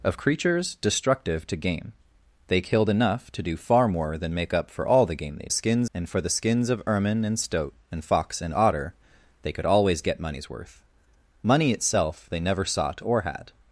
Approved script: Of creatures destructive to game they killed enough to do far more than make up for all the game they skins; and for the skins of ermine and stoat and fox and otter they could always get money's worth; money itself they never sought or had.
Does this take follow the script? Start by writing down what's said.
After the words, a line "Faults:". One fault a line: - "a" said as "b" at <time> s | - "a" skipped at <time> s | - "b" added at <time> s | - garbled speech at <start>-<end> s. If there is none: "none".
Of creatures destructive to game they killed enough to do far more than make up for all the game they skins; and for the skins of ermine and stoat and fox and otter they could always get money's worth; money itself they never sought or had.
Faults:
none